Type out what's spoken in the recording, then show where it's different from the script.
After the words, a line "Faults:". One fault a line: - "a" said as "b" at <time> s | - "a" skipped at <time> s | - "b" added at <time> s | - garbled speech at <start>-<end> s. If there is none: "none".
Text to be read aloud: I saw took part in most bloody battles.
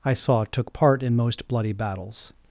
I saw took part in most bloody battles.
Faults:
none